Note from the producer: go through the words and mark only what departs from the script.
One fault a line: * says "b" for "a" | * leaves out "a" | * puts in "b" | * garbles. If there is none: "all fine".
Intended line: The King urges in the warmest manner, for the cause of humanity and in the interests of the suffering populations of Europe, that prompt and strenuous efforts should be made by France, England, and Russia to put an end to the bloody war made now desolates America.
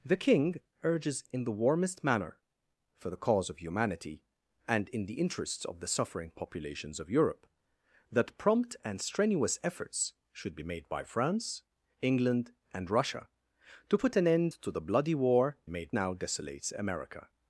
all fine